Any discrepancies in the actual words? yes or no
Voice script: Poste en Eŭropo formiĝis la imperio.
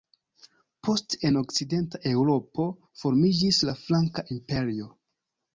yes